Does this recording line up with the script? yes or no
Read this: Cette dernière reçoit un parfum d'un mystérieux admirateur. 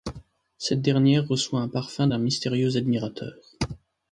yes